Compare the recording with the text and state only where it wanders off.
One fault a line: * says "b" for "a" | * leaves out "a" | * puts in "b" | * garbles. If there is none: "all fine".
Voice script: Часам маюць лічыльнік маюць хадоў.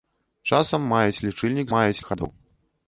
all fine